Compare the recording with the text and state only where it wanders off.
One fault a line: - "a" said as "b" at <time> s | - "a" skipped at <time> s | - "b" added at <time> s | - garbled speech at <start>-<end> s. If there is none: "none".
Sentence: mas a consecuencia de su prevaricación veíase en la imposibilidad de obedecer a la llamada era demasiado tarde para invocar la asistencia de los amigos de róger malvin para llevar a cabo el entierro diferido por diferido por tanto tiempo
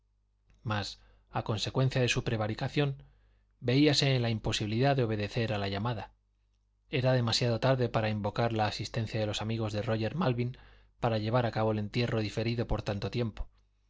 - "diferido por" skipped at 12.8 s